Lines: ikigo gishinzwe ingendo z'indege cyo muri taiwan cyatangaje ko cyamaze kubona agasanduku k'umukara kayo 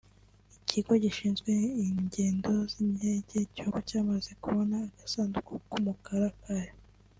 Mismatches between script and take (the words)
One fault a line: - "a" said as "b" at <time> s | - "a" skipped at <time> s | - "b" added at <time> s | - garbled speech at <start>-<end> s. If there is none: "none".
- "muri taiwan cyatangaje" skipped at 3.7 s